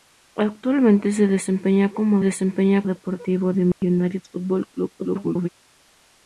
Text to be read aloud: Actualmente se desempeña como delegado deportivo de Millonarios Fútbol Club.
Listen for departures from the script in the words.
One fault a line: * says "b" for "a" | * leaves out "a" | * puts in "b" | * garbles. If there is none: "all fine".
* says "desempeña" for "delegado"
* garbles